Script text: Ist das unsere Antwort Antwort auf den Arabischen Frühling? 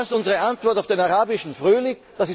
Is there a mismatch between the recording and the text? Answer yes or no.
yes